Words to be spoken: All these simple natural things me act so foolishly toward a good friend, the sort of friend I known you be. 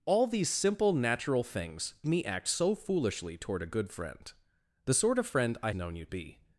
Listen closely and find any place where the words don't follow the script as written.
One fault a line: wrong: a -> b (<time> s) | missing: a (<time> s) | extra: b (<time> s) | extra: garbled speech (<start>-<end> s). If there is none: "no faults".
no faults